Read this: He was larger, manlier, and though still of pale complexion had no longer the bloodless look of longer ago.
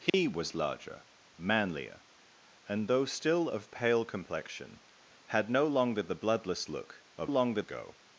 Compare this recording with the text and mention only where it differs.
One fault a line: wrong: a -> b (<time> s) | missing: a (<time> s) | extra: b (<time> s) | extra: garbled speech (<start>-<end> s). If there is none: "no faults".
no faults